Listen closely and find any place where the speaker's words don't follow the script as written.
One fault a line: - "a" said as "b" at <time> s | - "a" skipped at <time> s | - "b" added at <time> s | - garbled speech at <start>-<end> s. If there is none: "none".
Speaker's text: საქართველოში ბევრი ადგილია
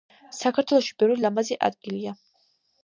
- "ლამაზი" added at 1.3 s